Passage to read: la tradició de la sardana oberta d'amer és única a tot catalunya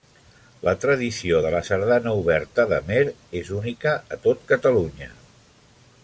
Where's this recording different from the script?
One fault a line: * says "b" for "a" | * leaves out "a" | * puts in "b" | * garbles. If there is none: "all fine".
all fine